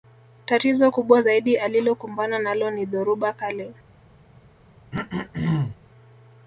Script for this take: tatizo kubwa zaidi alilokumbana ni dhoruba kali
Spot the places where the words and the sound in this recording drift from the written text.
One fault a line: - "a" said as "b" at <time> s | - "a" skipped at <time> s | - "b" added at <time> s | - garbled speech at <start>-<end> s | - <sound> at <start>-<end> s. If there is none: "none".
- "nalo" added at 2.4 s
- throat clearing at 4.9-5.8 s